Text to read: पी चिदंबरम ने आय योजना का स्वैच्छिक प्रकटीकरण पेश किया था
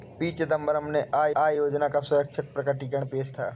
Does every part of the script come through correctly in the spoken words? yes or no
no